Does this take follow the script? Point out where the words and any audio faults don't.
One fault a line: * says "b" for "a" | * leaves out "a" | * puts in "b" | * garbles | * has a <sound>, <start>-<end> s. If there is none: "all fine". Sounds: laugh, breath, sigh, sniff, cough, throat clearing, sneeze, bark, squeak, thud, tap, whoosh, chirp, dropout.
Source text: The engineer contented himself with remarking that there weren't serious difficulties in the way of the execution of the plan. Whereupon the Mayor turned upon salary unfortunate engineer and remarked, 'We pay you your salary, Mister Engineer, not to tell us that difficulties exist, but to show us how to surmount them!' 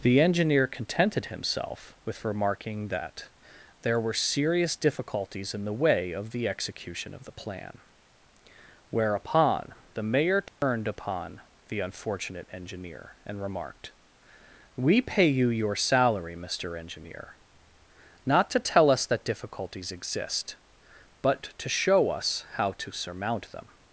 * says "were" for "weren't"
* has a dropout, 10.5-10.6 s
* says "the" for "salary"